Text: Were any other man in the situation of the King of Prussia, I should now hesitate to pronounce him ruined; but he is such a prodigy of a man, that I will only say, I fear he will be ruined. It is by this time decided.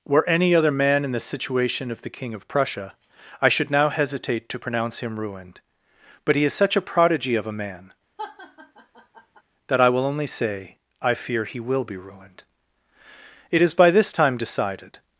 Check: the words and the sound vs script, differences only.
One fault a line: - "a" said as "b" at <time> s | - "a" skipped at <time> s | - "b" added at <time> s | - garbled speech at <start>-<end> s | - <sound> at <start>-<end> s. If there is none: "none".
- laugh at 8.2-9.4 s